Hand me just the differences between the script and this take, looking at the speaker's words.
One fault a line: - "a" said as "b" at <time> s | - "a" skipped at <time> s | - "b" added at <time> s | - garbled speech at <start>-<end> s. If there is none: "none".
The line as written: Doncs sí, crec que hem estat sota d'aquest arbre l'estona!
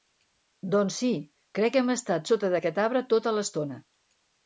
- "tota" added at 3.2 s